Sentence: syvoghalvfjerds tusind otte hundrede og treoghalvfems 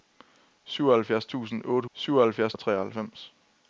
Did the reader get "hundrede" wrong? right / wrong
wrong